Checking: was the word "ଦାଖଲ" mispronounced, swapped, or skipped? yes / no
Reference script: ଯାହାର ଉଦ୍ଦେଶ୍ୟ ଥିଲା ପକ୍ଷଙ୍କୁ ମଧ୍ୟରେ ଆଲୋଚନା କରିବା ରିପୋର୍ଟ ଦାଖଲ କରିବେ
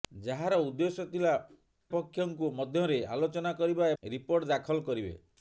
no